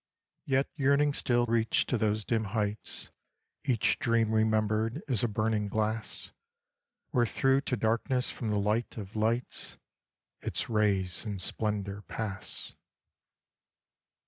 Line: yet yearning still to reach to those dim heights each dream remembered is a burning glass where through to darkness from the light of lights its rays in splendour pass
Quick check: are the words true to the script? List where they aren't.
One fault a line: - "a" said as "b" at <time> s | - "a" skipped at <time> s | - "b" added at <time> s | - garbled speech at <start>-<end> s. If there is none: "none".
- "to" skipped at 1.4 s